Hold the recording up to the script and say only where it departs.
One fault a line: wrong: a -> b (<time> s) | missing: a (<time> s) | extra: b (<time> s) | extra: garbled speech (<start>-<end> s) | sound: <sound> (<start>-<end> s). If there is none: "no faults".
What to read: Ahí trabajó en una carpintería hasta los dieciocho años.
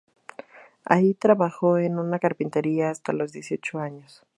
no faults